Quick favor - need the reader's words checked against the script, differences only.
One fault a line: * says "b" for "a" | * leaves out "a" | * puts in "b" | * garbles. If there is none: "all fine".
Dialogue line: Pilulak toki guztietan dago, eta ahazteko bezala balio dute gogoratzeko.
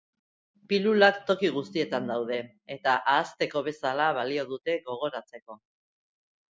* says "daude" for "dago"